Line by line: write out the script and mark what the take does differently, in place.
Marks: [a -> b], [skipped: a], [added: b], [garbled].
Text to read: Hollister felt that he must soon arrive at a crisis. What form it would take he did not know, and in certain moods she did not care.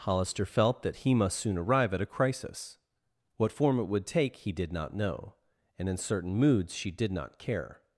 Hollister felt that he must soon arrive at a crisis. What form it would take he did not know, and in certain moods she did not care.